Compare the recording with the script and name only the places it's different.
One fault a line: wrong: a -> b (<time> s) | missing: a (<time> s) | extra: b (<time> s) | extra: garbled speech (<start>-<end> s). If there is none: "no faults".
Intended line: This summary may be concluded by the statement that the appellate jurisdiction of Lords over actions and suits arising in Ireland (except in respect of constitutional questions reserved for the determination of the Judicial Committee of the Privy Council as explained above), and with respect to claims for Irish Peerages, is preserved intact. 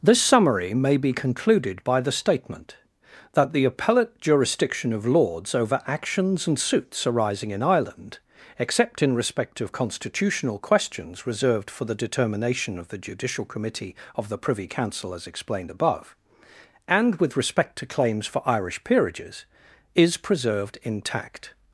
no faults